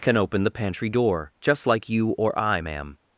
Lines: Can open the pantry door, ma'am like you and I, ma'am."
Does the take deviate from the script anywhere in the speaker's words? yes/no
yes